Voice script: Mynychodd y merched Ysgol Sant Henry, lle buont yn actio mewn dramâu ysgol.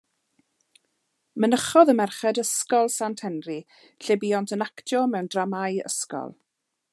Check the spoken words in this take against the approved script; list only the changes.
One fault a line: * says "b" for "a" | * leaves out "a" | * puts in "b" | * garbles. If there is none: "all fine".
all fine